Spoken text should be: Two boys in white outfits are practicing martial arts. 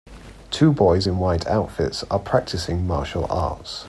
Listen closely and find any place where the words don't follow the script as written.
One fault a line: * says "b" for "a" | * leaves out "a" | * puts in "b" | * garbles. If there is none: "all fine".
all fine